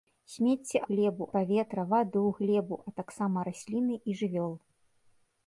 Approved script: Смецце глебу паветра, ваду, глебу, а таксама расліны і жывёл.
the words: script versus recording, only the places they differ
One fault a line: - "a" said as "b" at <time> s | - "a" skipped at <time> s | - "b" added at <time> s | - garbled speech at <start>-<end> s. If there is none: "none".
none